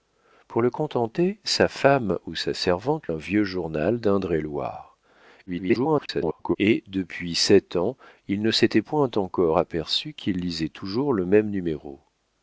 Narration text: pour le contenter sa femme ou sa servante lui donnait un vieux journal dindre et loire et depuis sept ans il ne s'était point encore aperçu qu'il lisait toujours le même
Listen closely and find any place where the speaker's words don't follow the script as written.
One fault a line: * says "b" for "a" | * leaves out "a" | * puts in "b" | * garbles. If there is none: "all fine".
* leaves out "lui donnait"
* garbles